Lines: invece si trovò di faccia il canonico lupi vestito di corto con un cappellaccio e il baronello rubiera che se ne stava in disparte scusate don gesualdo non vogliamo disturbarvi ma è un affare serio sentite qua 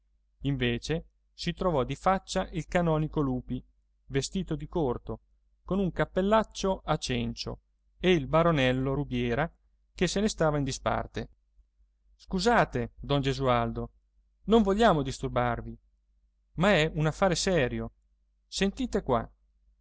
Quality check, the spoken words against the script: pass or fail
fail